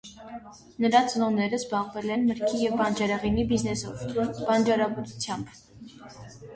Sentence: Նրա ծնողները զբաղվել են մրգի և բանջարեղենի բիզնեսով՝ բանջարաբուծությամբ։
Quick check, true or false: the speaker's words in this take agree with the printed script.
true